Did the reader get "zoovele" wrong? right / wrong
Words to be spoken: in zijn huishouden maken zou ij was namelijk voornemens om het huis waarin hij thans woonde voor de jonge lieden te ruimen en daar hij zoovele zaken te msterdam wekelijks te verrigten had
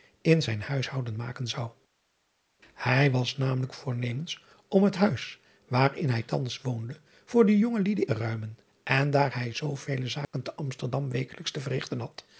right